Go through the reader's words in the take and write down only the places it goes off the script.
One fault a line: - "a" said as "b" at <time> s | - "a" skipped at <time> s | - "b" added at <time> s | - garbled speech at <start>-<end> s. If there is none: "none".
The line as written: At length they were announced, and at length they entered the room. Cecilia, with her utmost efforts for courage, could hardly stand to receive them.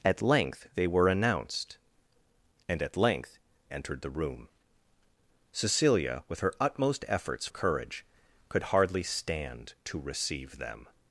- "they" skipped at 3.4 s
- "for" skipped at 7.5 s